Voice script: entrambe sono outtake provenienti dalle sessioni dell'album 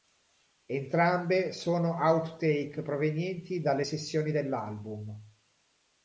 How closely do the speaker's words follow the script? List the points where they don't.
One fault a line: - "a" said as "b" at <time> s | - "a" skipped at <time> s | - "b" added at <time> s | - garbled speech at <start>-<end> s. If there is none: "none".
none